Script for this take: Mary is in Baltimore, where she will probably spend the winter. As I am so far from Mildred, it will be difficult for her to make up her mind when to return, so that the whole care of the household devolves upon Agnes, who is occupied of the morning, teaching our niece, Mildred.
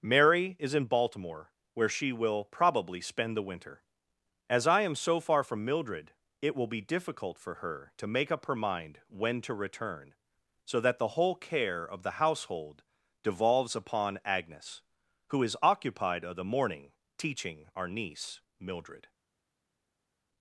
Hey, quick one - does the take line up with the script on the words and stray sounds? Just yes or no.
yes